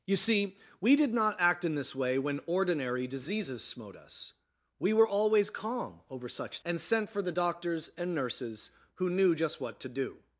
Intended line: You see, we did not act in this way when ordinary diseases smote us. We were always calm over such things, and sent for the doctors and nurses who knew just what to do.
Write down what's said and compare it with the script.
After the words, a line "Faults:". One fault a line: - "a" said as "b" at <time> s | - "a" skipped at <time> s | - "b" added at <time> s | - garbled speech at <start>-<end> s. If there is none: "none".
You see, we did not act in this way when ordinary diseases smote us. We were always calm over such and sent for the doctors and nurses who knew just what to do.
Faults:
- "things" skipped at 6.6 s